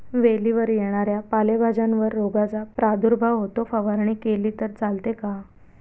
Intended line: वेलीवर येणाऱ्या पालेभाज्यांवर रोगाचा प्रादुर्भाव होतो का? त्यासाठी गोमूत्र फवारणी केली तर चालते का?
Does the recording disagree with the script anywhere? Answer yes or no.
yes